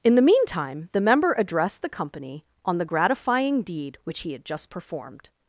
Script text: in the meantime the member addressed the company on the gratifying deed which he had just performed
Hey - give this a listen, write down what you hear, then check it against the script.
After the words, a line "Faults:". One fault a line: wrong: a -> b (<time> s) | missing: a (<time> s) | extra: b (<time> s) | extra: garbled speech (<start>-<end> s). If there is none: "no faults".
in the meantime the member addressed the company on the gratifying deed which he had just performed
Faults:
no faults